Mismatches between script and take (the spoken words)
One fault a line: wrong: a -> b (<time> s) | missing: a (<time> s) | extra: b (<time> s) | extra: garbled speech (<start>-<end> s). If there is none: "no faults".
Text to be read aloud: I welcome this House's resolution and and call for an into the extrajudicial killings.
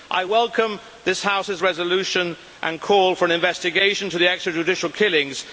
missing: and (2.8 s)
extra: investigation (3.3 s)